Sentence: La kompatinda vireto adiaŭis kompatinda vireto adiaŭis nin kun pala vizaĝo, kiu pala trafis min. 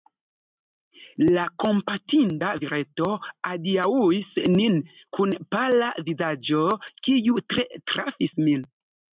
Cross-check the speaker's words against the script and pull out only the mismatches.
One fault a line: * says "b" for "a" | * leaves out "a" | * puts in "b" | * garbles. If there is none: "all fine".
* leaves out "kompatinda vireto adiaŭis"
* says "tre" for "pala"